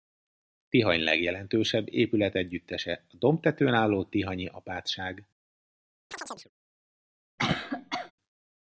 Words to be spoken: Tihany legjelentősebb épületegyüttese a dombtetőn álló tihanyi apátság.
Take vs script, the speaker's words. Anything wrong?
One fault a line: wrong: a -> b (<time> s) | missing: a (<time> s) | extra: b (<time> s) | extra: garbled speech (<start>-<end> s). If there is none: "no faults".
no faults